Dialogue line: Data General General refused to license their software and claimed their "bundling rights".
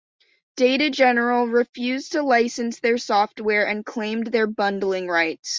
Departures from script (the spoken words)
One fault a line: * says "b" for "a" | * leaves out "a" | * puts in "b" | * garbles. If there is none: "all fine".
* leaves out "General"